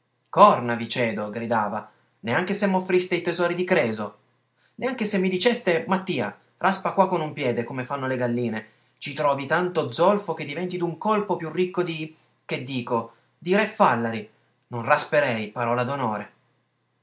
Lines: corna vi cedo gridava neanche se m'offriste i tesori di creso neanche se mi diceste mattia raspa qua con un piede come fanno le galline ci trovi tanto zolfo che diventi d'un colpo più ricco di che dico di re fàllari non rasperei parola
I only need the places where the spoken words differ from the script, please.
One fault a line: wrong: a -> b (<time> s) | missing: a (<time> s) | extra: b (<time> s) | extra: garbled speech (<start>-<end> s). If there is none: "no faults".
no faults